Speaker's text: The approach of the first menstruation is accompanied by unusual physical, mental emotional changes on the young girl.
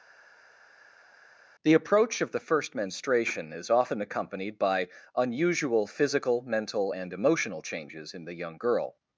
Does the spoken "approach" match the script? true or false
true